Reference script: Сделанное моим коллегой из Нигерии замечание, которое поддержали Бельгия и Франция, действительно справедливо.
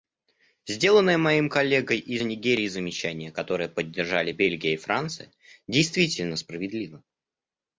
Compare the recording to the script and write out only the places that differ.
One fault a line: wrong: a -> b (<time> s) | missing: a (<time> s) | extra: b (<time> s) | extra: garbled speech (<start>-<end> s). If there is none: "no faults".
no faults